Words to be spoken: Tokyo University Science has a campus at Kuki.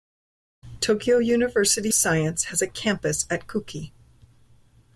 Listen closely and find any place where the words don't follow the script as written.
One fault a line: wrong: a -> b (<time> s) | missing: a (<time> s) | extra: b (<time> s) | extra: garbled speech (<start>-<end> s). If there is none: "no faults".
no faults